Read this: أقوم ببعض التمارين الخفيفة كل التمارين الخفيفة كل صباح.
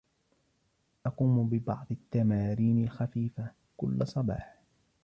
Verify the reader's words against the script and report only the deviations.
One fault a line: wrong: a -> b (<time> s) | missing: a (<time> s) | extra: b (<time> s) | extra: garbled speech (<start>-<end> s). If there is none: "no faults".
missing: التمارين الخفيفة كل (4.1 s)